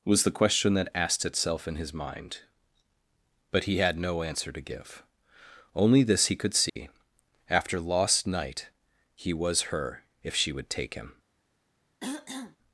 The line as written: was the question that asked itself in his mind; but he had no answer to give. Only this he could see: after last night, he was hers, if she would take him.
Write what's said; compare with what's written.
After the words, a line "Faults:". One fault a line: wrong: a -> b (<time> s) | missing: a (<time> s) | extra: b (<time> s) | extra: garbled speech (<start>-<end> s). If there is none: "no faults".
was the question that asked itself in his mind; but he had no answer to give. Only this he could see: after lost night, he was her, if she would take him.
Faults:
wrong: last -> lost (7.8 s)
wrong: hers -> her (9.6 s)